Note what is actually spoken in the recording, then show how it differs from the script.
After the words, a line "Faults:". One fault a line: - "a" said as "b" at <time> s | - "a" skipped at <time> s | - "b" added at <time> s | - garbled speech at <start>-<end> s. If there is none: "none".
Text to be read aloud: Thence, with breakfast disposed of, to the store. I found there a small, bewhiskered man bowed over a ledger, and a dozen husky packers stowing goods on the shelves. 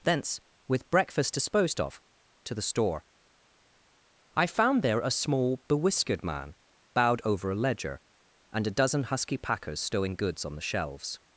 Thence, with breakfast disposed of, to the store. I found there a small, bewhiskered man bowed over a ledger, and a dozen husky packers stowing goods on the shelves.
Faults:
none